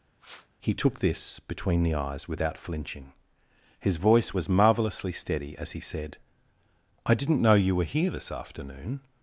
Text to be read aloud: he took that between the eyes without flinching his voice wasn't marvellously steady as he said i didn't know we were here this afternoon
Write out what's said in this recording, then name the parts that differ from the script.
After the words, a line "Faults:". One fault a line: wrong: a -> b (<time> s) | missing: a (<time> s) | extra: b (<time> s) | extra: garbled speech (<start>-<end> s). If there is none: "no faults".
he took this between the eyes without flinching his voice was marvellously steady as he said i didn't know you were here this afternoon
Faults:
wrong: that -> this (1.0 s)
wrong: wasn't -> was (4.3 s)
wrong: we -> you (7.5 s)